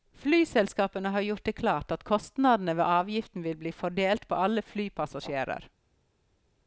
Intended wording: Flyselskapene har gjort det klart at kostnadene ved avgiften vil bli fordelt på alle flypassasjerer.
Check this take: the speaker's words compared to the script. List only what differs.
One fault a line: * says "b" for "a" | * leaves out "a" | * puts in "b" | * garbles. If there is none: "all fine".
all fine